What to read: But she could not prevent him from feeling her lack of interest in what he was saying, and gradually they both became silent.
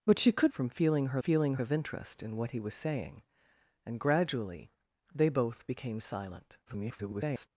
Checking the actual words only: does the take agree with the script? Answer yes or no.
no